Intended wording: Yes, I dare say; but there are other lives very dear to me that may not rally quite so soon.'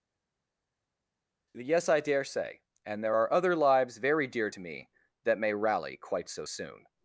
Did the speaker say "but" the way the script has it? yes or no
no